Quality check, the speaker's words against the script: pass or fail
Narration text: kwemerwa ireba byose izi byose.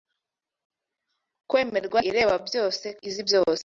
pass